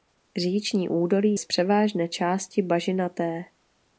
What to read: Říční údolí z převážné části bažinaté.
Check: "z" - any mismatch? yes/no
no